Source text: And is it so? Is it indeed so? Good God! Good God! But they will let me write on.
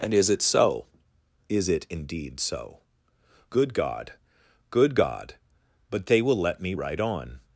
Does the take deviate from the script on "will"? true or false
false